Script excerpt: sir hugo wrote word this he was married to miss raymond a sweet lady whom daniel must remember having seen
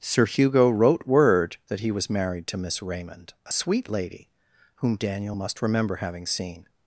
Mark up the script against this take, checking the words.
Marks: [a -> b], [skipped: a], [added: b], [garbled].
sir hugo wrote word [this -> that] he was married to miss raymond a sweet lady whom daniel must remember having seen